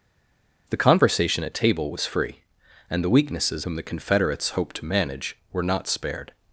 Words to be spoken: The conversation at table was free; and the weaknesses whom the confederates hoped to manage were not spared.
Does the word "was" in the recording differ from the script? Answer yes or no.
no